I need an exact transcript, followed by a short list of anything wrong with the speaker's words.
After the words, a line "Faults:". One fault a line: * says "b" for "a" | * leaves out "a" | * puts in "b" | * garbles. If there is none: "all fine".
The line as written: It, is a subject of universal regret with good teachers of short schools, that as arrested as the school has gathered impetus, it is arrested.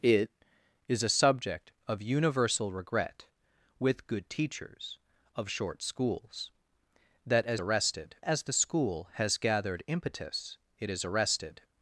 It, is a subject of universal regret with good teachers of short schools, that as arrested as the school has gathered impetus, it is arrested.
Faults:
all fine